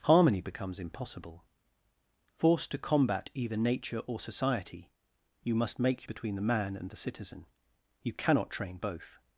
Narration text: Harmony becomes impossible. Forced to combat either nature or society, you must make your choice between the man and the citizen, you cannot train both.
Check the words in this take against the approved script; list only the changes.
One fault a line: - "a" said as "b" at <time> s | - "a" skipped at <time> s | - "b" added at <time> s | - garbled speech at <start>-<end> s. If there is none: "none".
- "your choice" skipped at 6.1 s